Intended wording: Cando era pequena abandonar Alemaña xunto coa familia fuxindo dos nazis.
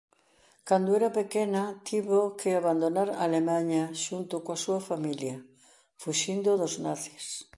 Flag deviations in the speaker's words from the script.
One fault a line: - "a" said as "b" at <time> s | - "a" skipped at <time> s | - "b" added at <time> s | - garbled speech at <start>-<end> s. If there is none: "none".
- "tivo que" added at 1.9 s
- "súa" added at 4.6 s